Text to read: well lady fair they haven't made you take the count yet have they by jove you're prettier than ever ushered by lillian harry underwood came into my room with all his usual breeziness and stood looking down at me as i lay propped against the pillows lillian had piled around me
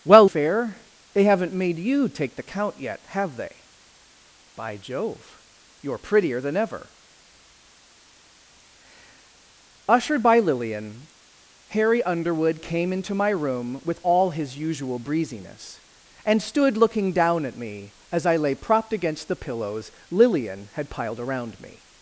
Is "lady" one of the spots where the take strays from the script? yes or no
yes